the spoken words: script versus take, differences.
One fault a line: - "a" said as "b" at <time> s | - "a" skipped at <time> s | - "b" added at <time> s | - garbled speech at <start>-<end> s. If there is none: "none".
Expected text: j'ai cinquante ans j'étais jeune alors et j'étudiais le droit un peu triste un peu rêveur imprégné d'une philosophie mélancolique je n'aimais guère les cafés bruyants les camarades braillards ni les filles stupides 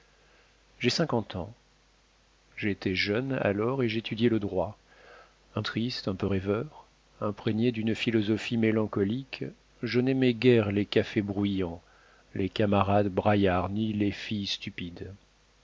- "peu" skipped at 5.6 s